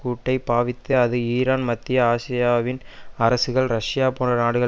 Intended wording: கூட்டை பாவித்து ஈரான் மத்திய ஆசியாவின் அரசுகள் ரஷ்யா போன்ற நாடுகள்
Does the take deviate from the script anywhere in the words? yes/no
yes